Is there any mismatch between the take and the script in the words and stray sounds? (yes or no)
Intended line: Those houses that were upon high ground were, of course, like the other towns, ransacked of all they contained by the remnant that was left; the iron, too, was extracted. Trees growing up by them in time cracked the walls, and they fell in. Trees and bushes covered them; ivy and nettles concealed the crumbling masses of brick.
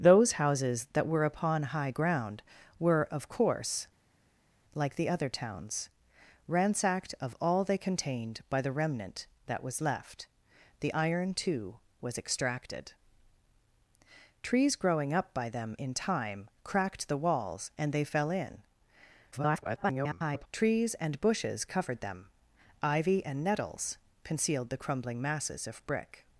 yes